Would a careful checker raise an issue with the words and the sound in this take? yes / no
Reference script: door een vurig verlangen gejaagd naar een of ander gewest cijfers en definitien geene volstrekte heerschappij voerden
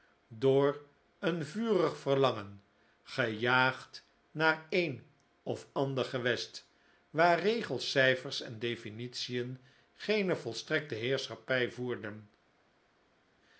yes